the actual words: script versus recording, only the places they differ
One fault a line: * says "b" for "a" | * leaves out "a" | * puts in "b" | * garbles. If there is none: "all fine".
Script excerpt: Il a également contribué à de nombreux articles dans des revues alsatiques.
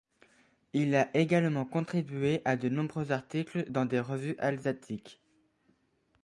all fine